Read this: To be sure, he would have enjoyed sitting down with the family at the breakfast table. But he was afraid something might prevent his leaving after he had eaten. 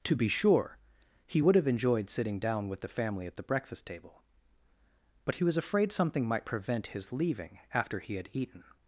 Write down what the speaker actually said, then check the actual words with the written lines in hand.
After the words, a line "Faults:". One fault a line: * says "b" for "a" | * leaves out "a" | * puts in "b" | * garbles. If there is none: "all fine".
To be sure, he would have enjoyed sitting down with the family at the breakfast table. But he was afraid something might prevent his leaving after he had eaten.
Faults:
all fine